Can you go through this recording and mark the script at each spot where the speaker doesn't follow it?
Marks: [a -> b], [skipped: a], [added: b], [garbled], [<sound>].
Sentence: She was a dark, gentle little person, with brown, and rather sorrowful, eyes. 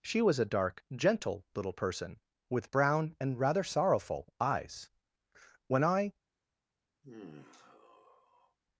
She was a dark, gentle little person, with brown, and rather sorrowful, eyes. [added: When I] [sigh]